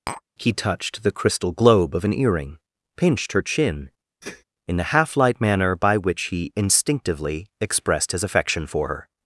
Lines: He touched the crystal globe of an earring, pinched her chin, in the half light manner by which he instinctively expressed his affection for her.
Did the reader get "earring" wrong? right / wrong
right